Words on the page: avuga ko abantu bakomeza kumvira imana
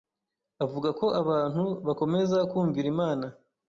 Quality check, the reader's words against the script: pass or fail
pass